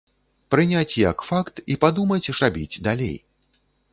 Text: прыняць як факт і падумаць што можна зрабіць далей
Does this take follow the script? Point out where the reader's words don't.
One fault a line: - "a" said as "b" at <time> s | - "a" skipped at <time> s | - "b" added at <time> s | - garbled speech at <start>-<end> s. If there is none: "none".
- "што можна" skipped at 2.3 s